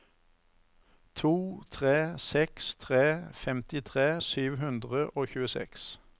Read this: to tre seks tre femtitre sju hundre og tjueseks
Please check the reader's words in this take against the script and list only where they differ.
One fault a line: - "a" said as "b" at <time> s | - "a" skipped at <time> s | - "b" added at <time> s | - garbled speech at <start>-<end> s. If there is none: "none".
none